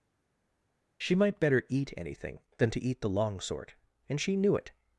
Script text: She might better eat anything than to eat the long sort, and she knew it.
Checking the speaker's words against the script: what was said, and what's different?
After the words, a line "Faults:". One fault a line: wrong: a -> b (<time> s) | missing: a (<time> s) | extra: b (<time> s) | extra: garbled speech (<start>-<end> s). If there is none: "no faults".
She might better eat anything than to eat the long sort, and she knew it.
Faults:
no faults